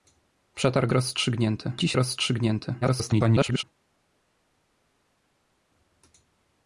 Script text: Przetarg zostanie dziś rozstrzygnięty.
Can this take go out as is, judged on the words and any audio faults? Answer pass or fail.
fail